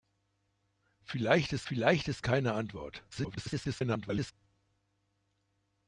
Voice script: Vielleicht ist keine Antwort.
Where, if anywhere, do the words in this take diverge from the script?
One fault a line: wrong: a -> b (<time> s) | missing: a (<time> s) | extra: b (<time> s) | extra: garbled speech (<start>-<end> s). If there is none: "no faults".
extra: vielleicht ist (1.7 s)
extra: garbled speech (3.1-4.3 s)